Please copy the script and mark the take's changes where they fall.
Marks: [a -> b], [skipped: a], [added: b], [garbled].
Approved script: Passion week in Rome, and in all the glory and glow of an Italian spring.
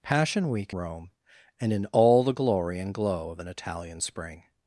Passion week [skipped: in] Rome, and in all the glory and glow of an Italian spring.